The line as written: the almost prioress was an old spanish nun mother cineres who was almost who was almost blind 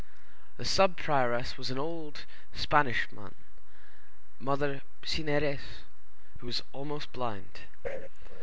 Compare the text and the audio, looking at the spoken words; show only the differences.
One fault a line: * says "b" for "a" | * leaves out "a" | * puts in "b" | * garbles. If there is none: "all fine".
* says "sub" for "almost"
* leaves out "who was almost"